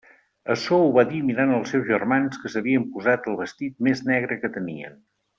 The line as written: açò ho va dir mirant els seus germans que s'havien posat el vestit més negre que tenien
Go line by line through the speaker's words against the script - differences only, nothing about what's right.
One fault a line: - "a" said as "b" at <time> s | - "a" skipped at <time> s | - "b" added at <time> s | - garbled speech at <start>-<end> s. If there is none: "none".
none